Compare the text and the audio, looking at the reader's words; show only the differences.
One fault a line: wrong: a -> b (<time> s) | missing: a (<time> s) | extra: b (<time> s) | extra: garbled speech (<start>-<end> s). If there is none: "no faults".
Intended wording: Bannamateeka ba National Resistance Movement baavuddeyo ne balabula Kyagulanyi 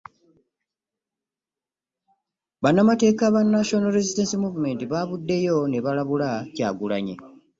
no faults